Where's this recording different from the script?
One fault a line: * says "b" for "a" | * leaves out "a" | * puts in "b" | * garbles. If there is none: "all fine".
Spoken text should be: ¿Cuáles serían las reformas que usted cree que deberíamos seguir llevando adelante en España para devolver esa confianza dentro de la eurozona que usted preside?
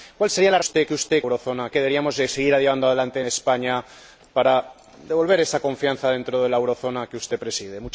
* says "usted" for "reformas"
* says "eurozona" for "cree"
* leaves out "en"